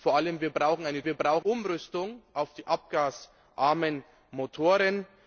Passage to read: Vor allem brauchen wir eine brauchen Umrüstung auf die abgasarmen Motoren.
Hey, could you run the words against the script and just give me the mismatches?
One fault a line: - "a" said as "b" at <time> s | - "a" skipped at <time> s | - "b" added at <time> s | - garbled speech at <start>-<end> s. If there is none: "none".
none